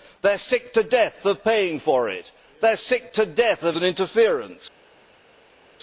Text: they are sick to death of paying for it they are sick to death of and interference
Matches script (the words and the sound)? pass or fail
pass